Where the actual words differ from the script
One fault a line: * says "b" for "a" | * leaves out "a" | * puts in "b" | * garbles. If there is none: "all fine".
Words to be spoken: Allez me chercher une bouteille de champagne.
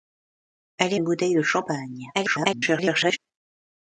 * leaves out "me chercher"
* garbles